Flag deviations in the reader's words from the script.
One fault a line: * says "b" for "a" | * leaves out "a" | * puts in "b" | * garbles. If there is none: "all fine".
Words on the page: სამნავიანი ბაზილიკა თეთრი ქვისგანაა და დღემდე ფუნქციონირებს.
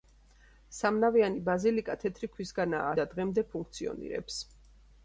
all fine